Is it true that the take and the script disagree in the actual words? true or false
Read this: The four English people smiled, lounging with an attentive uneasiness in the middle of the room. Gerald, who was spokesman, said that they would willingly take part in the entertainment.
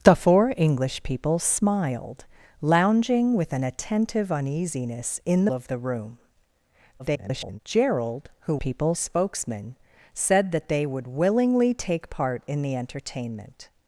true